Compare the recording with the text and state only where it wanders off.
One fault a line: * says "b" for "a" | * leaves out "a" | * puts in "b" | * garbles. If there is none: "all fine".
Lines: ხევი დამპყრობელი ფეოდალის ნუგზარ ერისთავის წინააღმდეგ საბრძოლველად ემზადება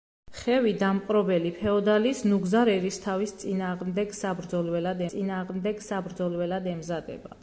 * puts in "წინააღმდეგ საბრძოლველად"